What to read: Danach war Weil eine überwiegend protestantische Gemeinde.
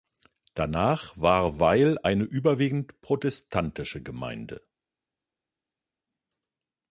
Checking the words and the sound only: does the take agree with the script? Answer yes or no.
yes